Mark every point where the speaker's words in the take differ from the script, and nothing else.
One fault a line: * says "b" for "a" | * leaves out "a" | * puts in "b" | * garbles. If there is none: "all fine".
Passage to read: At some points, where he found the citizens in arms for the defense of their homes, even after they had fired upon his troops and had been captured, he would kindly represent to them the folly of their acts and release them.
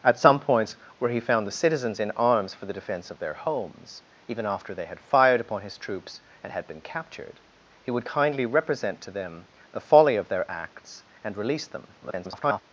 * garbles